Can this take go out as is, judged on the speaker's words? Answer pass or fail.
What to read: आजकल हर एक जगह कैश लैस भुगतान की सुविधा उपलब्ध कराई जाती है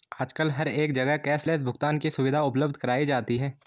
pass